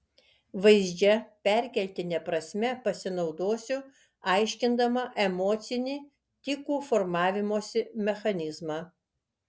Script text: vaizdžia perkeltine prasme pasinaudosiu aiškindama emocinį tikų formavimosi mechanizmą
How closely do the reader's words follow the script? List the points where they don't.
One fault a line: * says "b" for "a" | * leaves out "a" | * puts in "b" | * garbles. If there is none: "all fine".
all fine